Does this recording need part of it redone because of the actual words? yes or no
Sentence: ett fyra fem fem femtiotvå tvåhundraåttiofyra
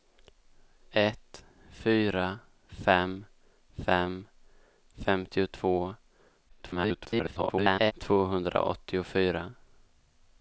yes